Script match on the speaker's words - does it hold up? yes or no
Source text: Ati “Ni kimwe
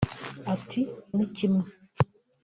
yes